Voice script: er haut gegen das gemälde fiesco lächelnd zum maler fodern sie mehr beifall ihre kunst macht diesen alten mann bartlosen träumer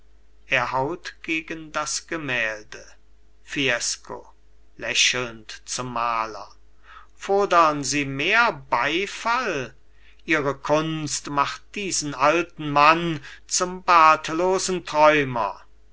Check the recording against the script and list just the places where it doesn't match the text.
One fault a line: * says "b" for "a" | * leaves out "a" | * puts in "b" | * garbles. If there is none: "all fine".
* puts in "zum"